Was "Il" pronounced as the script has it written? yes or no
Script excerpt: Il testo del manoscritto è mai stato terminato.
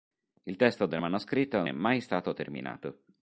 yes